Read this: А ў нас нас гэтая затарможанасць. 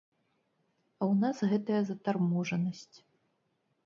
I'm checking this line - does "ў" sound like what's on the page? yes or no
yes